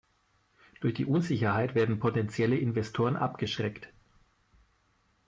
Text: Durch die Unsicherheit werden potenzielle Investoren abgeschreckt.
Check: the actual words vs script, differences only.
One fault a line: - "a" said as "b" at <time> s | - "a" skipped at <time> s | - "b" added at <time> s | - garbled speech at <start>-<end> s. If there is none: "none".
none